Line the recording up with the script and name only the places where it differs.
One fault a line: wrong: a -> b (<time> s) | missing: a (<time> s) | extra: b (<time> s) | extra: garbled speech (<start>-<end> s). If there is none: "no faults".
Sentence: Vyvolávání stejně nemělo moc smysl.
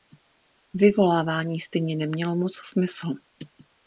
no faults